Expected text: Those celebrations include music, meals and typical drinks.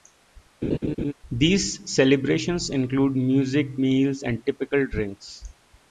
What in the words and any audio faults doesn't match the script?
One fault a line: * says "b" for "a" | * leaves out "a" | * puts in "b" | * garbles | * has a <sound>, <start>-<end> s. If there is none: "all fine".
* has a laugh, 0.6-1.1 s
* says "These" for "Those"